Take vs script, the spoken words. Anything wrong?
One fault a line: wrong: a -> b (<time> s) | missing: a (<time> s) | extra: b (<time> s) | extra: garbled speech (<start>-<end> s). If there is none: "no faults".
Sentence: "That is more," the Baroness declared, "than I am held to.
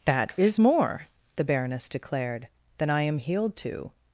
wrong: held -> healed (3.2 s)